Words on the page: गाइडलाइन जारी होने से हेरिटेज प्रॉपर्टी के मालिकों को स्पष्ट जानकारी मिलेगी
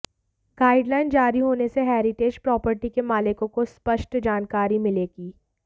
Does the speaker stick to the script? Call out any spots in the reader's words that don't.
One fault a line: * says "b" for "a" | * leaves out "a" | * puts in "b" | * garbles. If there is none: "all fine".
all fine